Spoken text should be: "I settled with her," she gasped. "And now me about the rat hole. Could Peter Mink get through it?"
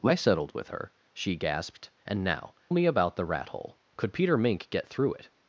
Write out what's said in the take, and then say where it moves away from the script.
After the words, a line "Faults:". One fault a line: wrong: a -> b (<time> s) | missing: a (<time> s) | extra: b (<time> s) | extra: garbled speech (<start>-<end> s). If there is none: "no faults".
"I settled with her," she gasped. "And now me about the rat hole. Could Peter Mink get through it?"
Faults:
no faults